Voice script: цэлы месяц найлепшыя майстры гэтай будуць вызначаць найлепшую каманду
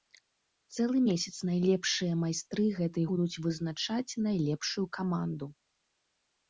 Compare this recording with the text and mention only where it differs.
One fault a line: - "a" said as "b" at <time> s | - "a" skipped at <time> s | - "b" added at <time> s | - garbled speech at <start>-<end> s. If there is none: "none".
none